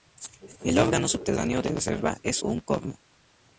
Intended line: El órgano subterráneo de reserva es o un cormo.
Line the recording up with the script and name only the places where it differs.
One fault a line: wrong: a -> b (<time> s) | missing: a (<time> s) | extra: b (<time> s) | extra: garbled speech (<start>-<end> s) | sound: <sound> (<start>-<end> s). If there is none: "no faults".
no faults